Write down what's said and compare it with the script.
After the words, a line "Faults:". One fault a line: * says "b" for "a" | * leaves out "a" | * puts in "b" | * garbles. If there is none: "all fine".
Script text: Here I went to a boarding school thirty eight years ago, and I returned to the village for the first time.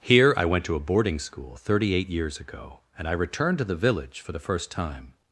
Here I went to a boarding school thirty eight years ago, and I returned to the village for the first time.
Faults:
all fine